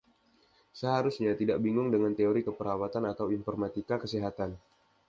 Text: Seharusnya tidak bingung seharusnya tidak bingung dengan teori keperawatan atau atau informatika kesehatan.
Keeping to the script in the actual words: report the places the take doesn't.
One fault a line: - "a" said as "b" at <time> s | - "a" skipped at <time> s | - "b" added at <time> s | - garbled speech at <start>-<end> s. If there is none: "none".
- "seharusnya tidak bingung" skipped at 1.9 s
- "atau" skipped at 3.3 s